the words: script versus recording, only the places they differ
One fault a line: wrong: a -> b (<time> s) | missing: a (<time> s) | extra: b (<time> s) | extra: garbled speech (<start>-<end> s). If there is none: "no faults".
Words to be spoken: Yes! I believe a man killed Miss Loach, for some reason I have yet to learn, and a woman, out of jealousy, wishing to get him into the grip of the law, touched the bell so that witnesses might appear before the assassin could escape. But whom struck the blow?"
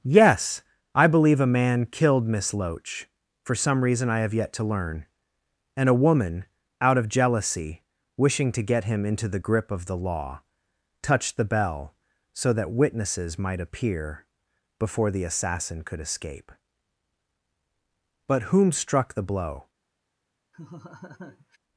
no faults